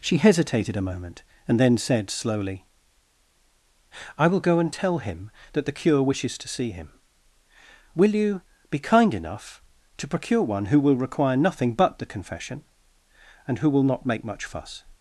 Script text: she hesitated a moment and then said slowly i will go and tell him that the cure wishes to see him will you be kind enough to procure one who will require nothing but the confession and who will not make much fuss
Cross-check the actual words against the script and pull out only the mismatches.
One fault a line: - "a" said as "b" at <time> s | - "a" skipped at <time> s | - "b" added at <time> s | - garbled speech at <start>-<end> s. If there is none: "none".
none